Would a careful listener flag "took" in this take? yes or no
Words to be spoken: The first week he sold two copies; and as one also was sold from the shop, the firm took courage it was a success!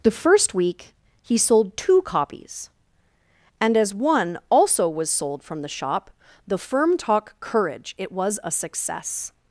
yes